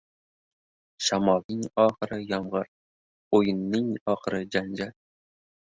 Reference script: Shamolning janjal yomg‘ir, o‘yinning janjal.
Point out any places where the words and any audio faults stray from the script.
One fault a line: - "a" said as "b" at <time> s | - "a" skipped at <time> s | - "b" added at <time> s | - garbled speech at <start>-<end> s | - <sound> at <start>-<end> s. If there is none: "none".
- "janjal" said as "oxiri" at 1.9 s
- "oxiri" added at 4.1 s